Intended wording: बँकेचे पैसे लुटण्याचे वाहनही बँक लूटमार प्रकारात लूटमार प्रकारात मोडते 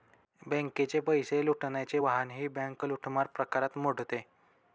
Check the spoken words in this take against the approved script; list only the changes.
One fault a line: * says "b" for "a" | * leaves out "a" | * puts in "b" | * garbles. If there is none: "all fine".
* leaves out "लूटमार प्रकारात"